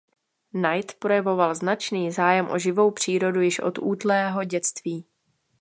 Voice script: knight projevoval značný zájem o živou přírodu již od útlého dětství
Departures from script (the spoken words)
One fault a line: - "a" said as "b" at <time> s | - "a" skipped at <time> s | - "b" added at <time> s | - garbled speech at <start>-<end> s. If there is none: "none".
none